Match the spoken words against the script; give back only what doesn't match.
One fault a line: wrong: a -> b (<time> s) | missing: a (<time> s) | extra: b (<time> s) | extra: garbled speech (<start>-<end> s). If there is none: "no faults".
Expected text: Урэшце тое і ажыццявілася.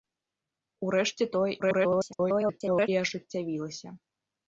extra: garbled speech (1.6-2.9 s)